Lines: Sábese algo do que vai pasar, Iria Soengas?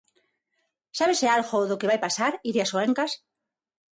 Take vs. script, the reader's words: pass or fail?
pass